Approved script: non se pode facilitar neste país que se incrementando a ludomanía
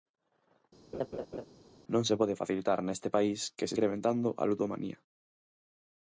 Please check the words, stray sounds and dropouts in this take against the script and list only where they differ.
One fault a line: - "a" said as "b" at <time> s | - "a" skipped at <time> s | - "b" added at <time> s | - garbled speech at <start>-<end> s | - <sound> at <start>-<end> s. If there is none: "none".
- laugh at 0.9-1.5 s